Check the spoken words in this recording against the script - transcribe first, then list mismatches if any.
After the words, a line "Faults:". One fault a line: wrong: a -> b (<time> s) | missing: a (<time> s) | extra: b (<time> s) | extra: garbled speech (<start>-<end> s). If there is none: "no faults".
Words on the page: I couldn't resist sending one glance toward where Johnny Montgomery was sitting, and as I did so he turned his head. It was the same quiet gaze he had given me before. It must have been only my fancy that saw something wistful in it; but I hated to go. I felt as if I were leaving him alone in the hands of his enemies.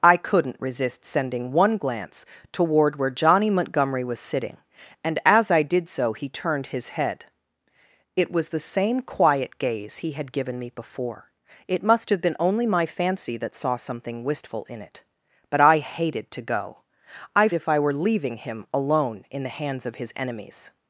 I couldn't resist sending one glance toward where Johnny Montgomery was sitting, and as I did so he turned his head. It was the same quiet gaze he had given me before. It must have been only my fancy that saw something wistful in it; but I hated to go. I if I were leaving him alone in the hands of his enemies.
Faults:
missing: felt as (17.5 s)